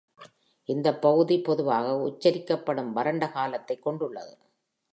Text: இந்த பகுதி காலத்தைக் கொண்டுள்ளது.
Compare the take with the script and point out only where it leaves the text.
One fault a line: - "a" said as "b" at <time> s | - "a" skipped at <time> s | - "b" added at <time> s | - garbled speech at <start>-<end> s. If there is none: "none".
- "பொதுவாக உச்சரிக்கப்படும் வறண்ட" added at 1.4 s